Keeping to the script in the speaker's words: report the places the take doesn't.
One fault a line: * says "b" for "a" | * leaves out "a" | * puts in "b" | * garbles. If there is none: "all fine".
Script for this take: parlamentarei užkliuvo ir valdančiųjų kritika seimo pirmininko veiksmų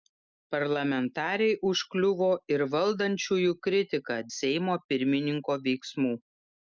all fine